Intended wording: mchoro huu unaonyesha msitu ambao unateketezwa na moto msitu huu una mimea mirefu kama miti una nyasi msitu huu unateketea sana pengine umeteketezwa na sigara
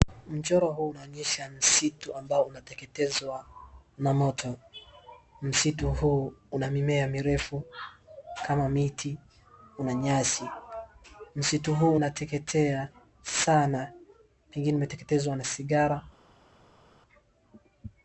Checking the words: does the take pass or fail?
pass